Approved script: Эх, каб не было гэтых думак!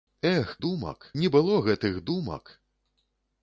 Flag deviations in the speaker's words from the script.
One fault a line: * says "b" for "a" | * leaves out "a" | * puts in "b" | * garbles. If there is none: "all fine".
* says "думак" for "каб"